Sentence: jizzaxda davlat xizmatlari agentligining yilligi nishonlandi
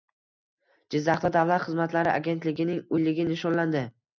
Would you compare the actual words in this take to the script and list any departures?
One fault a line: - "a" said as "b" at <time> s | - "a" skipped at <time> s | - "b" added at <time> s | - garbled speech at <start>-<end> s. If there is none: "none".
none